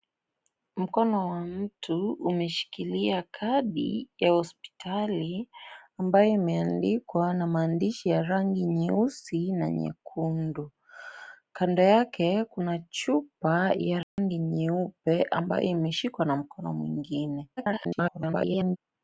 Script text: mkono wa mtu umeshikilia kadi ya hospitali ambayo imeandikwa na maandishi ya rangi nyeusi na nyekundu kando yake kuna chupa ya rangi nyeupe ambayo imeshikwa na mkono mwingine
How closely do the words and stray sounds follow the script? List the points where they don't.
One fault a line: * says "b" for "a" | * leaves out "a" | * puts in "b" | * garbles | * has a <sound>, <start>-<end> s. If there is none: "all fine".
* has a dropout, 14.0-14.2 s
* garbles